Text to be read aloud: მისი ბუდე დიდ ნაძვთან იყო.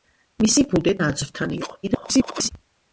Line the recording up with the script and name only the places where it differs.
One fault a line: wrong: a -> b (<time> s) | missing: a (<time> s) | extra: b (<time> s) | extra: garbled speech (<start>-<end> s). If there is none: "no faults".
missing: დიდ (0.9 s)
extra: garbled speech (1.8-2.5 s)